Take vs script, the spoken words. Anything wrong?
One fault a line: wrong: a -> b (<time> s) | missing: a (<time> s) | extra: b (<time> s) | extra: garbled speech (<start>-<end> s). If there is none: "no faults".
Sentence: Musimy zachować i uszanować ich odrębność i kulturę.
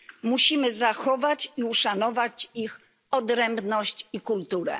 no faults